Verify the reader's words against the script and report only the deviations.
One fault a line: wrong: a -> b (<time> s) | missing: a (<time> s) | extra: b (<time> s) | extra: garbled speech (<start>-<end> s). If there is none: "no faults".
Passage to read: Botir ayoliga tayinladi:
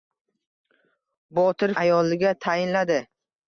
no faults